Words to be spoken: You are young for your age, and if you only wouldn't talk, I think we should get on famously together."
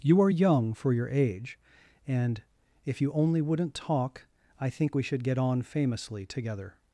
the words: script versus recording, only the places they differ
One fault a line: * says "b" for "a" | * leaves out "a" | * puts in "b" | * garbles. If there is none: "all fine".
all fine